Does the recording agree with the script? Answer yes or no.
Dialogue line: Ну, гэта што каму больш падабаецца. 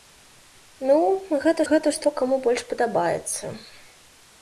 no